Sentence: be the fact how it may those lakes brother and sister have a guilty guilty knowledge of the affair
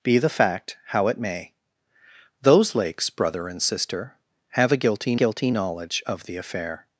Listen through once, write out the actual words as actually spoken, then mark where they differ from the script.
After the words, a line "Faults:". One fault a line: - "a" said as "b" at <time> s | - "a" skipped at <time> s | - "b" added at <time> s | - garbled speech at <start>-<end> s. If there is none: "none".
be the fact how it may those lakes brother and sister have a guilty guilty knowledge of the affair
Faults:
none